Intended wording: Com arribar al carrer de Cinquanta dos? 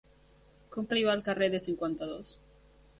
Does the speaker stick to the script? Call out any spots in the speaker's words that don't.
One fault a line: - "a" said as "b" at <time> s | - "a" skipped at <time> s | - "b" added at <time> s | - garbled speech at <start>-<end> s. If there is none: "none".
none